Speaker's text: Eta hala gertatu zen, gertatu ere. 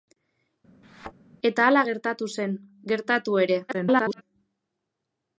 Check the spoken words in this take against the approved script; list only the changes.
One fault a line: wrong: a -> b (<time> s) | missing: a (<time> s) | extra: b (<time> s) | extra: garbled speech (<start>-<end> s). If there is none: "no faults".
extra: garbled speech (3.7-4.2 s)